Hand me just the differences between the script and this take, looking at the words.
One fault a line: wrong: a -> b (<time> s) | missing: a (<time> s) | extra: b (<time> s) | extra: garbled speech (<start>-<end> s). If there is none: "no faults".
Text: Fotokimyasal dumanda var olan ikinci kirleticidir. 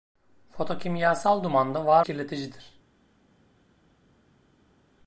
missing: olan ikinci (2.0 s)